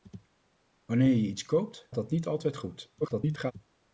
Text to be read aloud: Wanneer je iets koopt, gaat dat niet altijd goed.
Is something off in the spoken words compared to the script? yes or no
yes